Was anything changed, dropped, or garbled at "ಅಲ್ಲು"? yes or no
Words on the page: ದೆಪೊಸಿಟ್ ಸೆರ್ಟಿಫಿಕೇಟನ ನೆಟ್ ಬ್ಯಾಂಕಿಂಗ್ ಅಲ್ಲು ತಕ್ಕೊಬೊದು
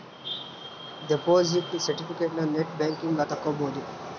yes